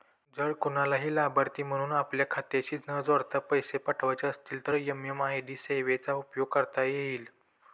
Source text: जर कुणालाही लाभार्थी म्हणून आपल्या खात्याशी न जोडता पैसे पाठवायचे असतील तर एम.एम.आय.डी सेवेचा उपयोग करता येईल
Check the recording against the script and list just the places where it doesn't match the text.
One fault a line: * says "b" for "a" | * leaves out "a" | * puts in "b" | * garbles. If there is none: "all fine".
all fine